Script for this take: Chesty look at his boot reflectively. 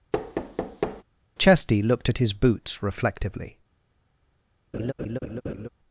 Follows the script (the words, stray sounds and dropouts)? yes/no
no